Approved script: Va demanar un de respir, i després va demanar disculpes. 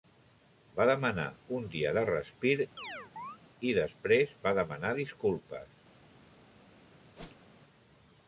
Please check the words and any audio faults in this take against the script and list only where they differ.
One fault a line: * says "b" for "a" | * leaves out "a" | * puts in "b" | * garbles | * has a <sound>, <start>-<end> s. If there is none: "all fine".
* puts in "dia"
* has a chirp, 2.8-3.4 s
* has a whoosh, 7.2-7.6 s